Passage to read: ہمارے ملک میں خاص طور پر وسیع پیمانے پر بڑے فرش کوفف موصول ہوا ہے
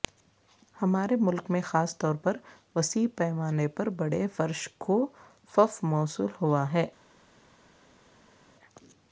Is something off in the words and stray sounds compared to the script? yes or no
no